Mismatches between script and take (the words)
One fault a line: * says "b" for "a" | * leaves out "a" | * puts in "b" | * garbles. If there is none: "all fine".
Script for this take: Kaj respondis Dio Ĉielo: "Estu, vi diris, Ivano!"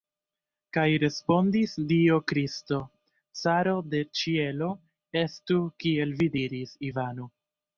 * puts in "Kristo caro de"
* puts in "kiel"